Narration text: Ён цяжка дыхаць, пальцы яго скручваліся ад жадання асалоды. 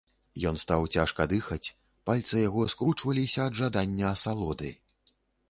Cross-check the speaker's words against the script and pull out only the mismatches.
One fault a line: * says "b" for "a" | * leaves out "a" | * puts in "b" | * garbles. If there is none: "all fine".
* puts in "стаў"